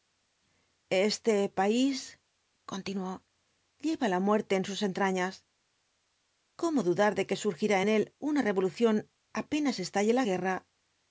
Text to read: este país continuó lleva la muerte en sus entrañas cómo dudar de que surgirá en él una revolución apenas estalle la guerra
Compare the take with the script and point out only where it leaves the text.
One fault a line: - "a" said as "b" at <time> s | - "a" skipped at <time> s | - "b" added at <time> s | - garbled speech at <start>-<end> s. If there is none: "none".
none